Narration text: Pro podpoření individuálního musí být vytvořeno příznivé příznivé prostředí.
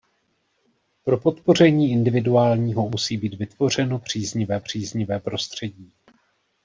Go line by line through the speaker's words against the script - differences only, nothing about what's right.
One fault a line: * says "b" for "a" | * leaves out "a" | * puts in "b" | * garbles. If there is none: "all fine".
all fine